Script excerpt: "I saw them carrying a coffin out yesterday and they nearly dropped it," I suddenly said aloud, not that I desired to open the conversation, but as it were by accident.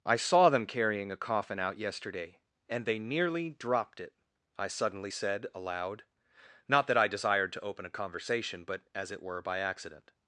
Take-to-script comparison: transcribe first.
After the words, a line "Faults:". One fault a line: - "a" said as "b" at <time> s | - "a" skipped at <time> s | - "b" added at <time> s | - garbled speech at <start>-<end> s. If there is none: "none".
"I saw them carrying a coffin out yesterday and they nearly dropped it," I suddenly said aloud, not that I desired to open a conversation, but as it were by accident.
Faults:
- "the" said as "a" at 7.8 s